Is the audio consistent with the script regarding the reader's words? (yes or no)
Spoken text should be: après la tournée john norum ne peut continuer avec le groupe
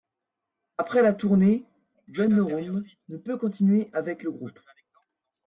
yes